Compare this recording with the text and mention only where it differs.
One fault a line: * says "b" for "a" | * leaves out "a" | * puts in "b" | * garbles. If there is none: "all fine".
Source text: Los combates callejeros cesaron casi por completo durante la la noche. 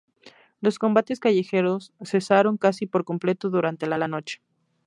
all fine